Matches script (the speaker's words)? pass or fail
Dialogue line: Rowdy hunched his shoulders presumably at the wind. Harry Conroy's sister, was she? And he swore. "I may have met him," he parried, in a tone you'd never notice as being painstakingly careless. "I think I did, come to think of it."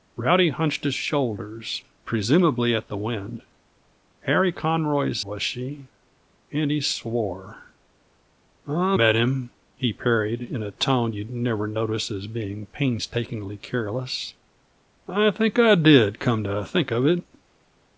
fail